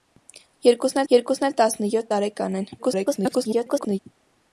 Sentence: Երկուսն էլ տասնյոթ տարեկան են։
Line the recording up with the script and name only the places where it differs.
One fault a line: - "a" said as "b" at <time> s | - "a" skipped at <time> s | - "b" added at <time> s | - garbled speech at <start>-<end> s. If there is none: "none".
- "երկուսն" added at 1.1 s
- garbled speech at 2.8-4.0 s